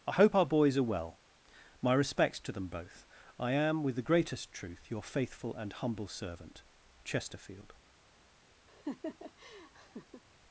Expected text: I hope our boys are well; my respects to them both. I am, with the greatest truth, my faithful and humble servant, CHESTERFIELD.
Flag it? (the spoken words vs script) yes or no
yes